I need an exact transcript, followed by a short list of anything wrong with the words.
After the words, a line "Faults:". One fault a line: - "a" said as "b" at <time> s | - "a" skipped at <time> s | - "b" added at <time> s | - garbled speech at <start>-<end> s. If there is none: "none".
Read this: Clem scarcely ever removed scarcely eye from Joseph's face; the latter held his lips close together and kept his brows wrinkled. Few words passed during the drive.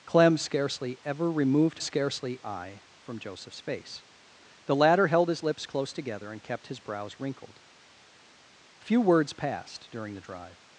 Clem scarcely ever removed scarcely eye from Joseph's face; the latter held his lips close together and kept his brows wrinkled. Few words passed during the drive.
Faults:
none